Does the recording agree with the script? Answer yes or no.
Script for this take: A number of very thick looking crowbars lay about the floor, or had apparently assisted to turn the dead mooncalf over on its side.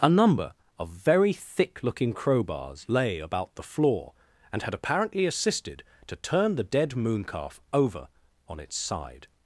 no